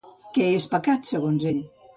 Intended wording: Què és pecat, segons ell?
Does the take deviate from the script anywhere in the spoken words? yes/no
no